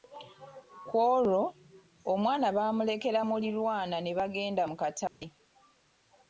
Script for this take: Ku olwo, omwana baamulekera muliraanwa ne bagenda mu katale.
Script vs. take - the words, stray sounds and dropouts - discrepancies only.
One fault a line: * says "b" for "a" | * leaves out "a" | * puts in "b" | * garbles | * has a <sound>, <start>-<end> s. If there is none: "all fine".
* has a dropout, 5.1-5.2 s